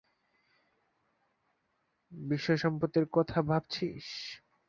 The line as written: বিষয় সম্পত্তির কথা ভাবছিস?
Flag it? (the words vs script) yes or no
no